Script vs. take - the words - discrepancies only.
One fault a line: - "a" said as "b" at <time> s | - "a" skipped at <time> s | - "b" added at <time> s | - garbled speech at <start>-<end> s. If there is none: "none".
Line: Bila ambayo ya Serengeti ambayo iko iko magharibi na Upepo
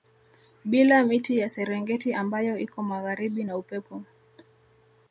- "ambayo" said as "miti" at 1.0 s
- "iko" skipped at 2.8 s